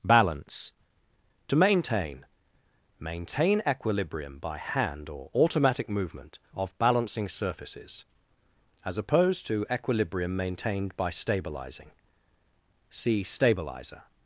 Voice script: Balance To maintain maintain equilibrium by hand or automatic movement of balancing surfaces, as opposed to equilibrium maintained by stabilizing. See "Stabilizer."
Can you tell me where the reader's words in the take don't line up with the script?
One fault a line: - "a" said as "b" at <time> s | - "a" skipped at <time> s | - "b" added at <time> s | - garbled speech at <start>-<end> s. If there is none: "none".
none